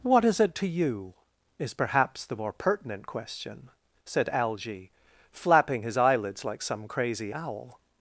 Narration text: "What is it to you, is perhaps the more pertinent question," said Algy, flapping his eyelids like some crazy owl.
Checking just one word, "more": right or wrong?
right